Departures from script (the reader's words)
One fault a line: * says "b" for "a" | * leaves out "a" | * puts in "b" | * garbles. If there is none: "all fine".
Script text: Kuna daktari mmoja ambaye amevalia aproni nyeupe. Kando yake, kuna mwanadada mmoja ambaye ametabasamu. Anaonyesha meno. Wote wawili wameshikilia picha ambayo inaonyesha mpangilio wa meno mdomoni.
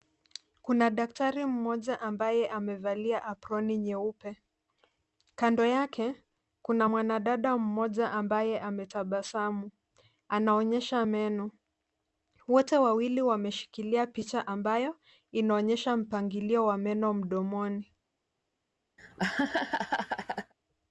all fine